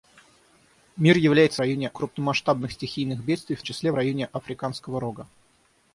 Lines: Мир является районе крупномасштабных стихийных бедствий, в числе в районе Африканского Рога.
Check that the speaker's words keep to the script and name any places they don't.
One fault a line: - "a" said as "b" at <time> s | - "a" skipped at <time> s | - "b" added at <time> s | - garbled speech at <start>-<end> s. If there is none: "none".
none